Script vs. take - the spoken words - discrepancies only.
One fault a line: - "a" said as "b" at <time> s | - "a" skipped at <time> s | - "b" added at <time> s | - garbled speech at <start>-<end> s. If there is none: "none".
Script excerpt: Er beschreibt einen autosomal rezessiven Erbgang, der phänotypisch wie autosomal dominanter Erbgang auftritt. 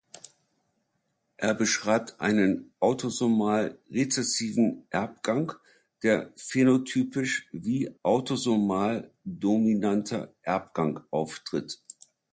none